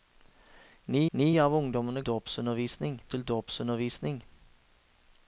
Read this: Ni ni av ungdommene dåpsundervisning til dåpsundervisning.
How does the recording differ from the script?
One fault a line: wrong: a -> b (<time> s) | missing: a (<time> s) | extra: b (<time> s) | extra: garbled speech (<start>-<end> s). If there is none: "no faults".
no faults